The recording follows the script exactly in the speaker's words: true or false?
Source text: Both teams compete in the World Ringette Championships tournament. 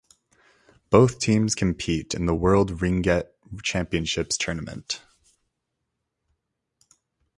true